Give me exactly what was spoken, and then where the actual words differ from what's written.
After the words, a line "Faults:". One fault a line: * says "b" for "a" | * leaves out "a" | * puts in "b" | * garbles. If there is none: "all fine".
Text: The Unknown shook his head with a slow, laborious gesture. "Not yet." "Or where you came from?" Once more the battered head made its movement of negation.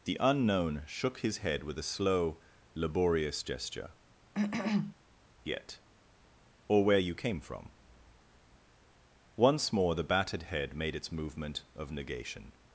The Unknown shook his head with a slow, laborious gesture. "Yet." "Or where you came from?" Once more the battered head made its movement of negation.
Faults:
* leaves out "Not"